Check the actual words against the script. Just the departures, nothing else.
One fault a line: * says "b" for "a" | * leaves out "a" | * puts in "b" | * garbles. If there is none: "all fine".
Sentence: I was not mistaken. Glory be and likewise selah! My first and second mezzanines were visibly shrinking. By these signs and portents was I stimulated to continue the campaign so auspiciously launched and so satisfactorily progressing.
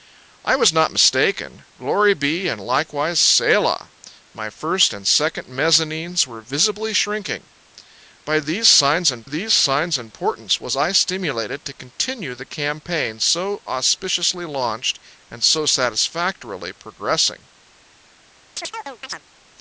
* puts in "these signs and"